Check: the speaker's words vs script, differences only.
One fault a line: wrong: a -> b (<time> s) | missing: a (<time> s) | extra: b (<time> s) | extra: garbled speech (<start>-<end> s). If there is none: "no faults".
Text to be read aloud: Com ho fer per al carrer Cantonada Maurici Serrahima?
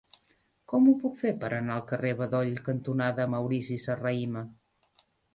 extra: puc (1.0 s)
extra: anar (1.6 s)
extra: Bedoll (2.2 s)